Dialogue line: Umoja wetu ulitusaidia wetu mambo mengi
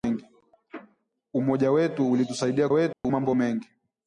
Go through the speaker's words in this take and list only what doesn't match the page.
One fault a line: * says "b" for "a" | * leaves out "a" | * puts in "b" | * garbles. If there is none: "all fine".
all fine